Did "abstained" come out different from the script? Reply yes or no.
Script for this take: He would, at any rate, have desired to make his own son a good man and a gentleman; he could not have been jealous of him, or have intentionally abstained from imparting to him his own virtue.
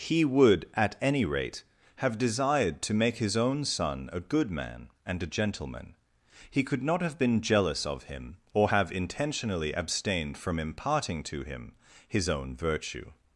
no